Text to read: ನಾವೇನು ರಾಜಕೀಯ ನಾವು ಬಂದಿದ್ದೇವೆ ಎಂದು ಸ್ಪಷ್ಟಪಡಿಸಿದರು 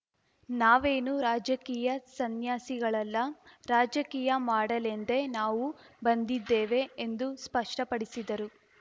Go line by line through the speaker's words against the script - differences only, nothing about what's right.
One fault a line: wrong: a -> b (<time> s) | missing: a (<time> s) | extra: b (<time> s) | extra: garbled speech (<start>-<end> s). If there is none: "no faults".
extra: ಸನ್ಯಾಸಿಗಳಲ್ಲ ರಾಜಕೀಯ ಮಾಡಲೆಂದೇ (2.1 s)